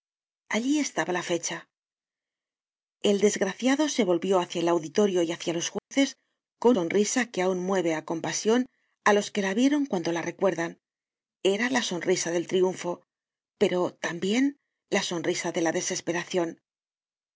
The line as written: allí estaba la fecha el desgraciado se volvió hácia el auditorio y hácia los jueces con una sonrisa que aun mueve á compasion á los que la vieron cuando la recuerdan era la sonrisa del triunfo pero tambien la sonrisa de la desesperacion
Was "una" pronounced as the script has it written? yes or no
no